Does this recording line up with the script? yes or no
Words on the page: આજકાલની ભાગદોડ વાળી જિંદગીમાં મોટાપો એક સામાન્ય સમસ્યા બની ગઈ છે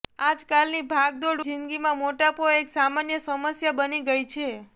no